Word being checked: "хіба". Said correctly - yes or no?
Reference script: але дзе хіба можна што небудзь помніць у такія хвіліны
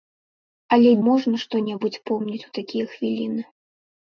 no